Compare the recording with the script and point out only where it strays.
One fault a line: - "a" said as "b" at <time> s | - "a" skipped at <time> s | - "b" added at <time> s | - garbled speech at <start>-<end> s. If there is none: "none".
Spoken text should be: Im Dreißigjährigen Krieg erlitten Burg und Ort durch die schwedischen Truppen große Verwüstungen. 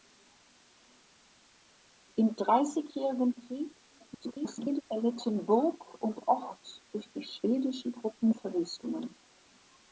- garbled speech at 4.0-4.8 s
- "große" skipped at 8.3 s